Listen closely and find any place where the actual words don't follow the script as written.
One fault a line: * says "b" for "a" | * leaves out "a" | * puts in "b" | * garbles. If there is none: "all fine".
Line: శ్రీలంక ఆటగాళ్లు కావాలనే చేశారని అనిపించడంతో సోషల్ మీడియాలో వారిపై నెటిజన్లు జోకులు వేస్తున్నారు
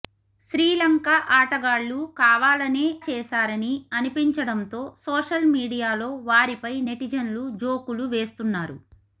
all fine